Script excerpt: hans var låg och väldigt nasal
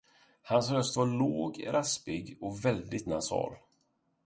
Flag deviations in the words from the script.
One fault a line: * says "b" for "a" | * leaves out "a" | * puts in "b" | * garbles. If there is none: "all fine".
* puts in "röst"
* puts in "raspig"